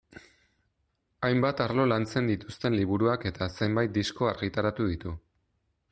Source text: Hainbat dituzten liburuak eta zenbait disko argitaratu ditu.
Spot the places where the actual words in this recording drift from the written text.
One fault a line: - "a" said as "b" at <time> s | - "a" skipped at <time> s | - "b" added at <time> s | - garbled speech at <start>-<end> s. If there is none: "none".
- "arlo lantzen" added at 1.6 s